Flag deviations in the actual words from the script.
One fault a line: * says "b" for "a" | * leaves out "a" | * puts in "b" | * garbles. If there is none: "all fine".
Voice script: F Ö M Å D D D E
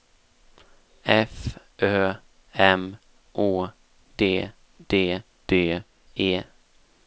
all fine